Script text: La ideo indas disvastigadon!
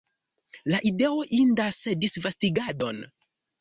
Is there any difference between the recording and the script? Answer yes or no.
no